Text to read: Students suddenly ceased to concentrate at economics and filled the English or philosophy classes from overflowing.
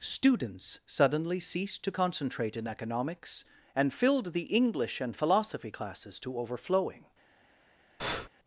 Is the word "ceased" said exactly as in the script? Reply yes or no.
yes